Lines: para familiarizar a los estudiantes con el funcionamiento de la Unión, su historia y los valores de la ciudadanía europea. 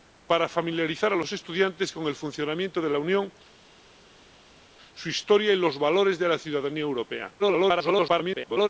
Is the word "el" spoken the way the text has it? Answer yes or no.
yes